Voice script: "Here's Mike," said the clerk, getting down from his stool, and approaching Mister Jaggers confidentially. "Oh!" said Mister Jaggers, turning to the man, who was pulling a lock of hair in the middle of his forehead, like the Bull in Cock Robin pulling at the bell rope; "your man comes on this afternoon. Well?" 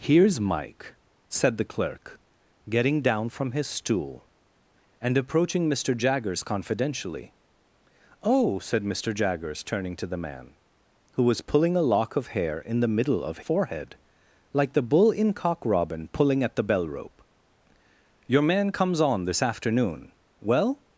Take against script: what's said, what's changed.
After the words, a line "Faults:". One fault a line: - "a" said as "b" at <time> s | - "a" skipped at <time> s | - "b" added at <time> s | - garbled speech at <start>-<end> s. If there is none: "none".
"Here's Mike," said the clerk, getting down from his stool, and approaching Mister Jaggers confidentially. "Oh!" said Mister Jaggers, turning to the man, who was pulling a lock of hair in the middle of forehead, like the Bull in Cock Robin pulling at the bell rope; "your man comes on this afternoon. Well?"
Faults:
- "his" skipped at 13.4 s